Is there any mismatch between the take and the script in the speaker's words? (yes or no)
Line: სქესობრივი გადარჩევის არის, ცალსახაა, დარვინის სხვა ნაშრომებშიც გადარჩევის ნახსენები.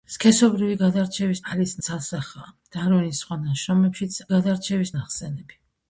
no